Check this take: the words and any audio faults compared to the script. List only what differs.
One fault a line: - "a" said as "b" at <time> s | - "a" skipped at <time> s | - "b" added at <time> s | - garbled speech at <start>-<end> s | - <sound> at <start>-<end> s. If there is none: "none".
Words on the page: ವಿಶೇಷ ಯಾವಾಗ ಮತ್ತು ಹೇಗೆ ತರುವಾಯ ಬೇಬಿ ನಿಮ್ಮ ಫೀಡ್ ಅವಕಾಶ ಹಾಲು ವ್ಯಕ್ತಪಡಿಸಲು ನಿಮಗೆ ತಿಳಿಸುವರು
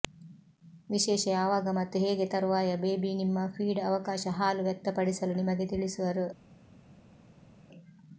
none